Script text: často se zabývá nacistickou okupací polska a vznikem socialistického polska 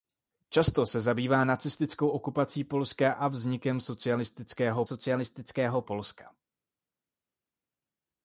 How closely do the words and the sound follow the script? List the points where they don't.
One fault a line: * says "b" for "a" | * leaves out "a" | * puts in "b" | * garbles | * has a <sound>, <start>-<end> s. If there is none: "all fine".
* puts in "socialistického"